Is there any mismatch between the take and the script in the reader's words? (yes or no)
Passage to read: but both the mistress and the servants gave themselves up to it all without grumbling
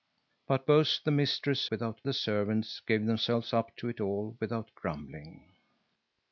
yes